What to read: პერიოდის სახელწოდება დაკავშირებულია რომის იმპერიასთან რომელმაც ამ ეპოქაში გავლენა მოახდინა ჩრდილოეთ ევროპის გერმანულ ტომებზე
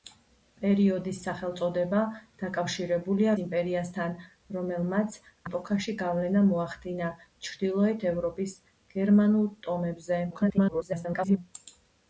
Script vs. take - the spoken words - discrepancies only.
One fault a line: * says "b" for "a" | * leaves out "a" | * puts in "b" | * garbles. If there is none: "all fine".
* leaves out "რომის"
* leaves out "ამ"
* garbles